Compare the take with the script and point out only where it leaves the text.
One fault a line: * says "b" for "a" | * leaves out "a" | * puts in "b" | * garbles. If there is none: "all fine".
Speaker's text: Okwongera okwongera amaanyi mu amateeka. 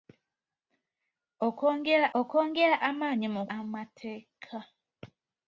all fine